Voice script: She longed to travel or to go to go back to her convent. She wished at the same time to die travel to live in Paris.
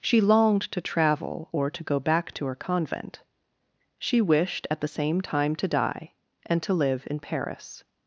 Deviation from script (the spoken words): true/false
true